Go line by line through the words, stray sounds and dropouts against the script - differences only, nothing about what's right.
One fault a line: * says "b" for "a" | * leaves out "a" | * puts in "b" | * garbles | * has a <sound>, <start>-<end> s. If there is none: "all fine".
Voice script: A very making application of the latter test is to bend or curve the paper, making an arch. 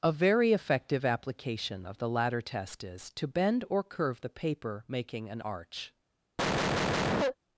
* says "effective" for "making"
* has a cough, 6.4-7.4 s